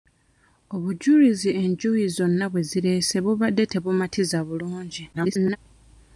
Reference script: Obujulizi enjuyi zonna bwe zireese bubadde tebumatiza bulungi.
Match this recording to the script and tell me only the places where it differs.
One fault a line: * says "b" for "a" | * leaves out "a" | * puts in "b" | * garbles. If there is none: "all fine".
* garbles